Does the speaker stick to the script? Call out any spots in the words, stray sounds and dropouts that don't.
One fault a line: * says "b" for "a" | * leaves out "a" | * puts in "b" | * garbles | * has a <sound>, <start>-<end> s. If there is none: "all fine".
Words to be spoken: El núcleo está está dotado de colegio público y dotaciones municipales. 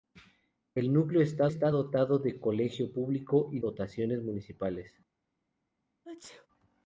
* has a sneeze, 6.1-6.5 s